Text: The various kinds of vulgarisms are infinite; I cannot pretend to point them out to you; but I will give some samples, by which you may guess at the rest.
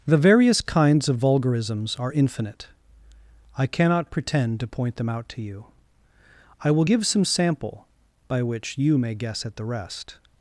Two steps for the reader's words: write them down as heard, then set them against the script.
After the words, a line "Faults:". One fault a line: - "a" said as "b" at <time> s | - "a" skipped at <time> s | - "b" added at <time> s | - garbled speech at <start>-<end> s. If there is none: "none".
The various kinds of vulgarisms are infinite; I cannot pretend to point them out to you; I will give some sample, by which you may guess at the rest.
Faults:
- "but" skipped at 5.7 s
- "samples" said as "sample" at 7.2 s